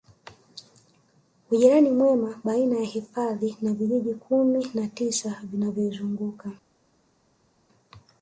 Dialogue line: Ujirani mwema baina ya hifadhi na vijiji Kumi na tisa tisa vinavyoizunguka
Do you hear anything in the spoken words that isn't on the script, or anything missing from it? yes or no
yes